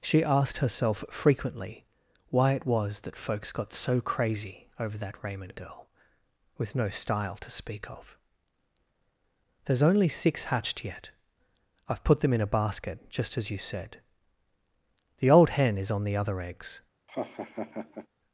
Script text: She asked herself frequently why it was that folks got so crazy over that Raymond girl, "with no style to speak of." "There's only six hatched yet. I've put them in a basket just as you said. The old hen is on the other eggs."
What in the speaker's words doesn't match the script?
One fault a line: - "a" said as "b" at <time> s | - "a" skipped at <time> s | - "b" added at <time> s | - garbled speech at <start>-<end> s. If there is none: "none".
none